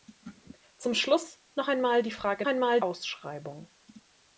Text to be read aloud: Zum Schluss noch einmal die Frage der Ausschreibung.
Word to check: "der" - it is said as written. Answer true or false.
false